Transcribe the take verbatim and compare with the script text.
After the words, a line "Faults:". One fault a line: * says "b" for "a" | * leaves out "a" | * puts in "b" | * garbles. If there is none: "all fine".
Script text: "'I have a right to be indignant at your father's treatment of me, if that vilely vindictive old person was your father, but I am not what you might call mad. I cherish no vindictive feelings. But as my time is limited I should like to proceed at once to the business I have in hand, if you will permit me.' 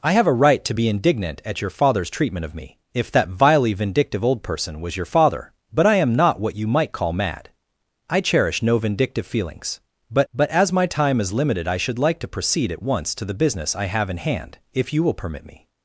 "'I have a right to be indignant at your father's treatment of me, if that vilely vindictive old person was your father, but I am not what you might call mad. I cherish no vindictive feelings. But but as my time is limited I should like to proceed at once to the business I have in hand, if you will permit me.'
Faults:
* puts in "but"